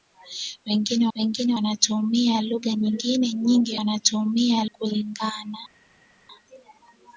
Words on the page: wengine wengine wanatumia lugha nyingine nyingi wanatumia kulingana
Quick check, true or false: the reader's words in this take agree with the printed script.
true